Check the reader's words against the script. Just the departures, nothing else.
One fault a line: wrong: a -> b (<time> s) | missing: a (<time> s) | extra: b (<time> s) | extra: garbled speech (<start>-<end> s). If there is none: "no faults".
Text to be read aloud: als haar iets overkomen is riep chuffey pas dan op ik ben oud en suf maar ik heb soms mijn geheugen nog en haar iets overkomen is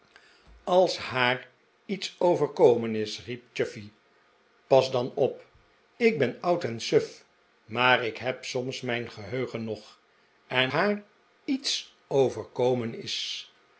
no faults